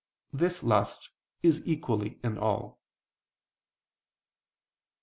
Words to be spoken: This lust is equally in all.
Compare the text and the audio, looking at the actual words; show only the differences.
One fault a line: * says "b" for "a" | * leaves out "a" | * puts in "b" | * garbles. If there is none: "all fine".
all fine